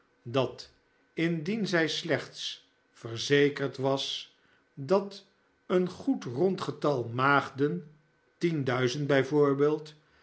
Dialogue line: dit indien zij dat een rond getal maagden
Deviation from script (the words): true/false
true